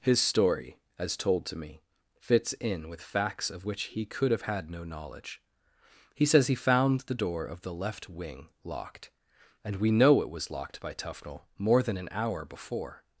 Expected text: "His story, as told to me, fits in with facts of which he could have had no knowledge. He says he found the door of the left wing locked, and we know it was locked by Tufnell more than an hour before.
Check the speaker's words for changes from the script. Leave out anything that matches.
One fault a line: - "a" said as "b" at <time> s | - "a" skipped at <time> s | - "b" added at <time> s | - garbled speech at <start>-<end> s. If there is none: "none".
none